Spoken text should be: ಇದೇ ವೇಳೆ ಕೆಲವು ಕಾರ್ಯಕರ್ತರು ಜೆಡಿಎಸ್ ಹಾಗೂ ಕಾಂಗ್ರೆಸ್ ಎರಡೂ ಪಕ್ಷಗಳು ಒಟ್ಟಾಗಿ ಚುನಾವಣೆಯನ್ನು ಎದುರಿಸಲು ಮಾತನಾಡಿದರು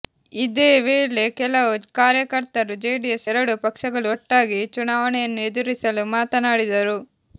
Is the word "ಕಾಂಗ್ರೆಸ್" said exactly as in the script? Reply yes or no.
no